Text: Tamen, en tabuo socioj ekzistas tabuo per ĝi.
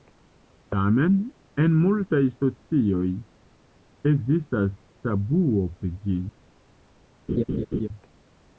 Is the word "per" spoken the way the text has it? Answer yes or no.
no